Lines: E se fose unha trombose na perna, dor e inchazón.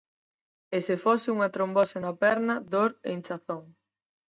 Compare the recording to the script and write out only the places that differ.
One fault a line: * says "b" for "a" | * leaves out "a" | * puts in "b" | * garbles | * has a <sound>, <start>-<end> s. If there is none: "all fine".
all fine